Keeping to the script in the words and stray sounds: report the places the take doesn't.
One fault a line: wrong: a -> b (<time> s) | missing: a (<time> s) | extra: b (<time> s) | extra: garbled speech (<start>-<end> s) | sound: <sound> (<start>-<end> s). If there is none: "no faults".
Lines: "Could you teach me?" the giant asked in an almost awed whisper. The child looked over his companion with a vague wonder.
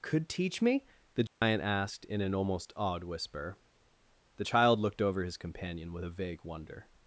missing: you (0.3 s)
sound: dropout (1.3-1.4 s)